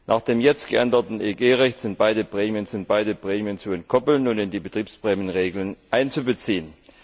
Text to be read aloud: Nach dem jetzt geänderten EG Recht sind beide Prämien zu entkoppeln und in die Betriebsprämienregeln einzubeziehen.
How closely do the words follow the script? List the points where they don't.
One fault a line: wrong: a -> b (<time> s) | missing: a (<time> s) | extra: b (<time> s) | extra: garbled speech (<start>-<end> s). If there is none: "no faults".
extra: sind beide Prämien (2.7 s)